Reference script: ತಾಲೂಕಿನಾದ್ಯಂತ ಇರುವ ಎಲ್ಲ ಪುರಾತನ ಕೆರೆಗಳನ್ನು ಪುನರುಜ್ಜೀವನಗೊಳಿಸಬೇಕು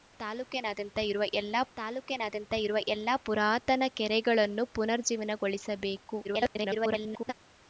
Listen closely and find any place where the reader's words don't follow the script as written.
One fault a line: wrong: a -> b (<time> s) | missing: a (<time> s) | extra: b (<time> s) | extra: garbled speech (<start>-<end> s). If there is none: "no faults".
extra: ತಾಲೂಕಿನಾದ್ಯಂತ ಇರುವ ಎಲ್ಲ (1.8 s)
extra: garbled speech (6.2-7.3 s)